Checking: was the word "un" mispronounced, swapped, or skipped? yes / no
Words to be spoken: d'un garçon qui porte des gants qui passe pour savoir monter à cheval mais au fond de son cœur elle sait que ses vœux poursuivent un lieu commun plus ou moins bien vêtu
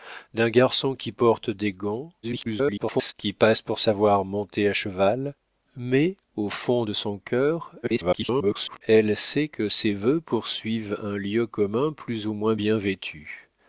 no